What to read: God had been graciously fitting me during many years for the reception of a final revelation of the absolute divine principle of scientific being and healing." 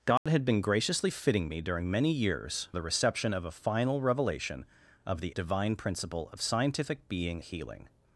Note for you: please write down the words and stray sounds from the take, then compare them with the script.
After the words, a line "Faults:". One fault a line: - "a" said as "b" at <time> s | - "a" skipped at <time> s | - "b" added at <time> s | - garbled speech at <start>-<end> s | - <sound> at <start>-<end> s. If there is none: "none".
God had been graciously fitting me during many years the reception of a final revelation of the divine principle of scientific being healing."
Faults:
- dropout at 0.2-0.3 s
- "for" skipped at 2.7 s
- "absolute" skipped at 5.4 s
- "and" skipped at 7.4 s